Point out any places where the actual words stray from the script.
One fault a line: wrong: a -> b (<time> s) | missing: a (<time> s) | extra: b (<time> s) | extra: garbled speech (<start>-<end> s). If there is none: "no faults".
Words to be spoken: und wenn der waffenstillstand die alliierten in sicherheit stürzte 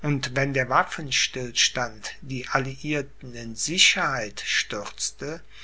no faults